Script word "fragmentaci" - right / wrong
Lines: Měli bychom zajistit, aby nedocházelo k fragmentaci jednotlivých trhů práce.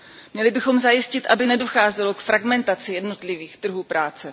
right